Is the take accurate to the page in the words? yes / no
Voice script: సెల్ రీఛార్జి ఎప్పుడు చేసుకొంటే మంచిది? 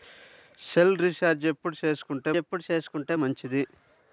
no